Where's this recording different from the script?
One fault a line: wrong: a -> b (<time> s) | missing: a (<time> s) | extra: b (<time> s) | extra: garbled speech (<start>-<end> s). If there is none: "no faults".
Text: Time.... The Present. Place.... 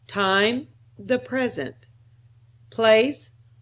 no faults